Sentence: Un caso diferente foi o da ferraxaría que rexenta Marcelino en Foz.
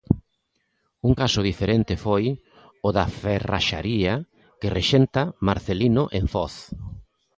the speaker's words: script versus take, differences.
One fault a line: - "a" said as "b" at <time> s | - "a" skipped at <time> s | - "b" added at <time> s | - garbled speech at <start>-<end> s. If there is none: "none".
none